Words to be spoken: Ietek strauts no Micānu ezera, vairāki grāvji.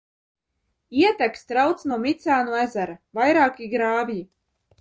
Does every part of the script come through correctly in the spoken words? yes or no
yes